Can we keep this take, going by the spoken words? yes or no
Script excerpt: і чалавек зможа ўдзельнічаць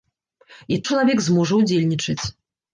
yes